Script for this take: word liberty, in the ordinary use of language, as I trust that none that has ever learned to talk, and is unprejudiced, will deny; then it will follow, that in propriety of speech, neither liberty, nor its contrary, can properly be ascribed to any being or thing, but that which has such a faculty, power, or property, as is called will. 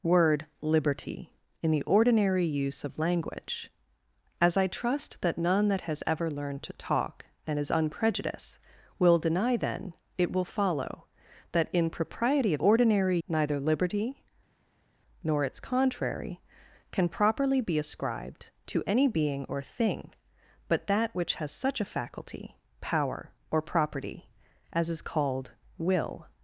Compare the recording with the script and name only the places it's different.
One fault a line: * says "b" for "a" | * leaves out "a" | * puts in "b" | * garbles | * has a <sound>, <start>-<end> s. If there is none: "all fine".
* says "ordinary" for "speech"